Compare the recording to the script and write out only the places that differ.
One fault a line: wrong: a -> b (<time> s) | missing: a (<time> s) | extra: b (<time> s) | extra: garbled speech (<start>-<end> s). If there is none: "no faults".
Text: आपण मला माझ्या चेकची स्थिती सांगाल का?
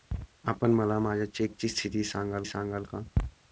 extra: सांगाल (2.4 s)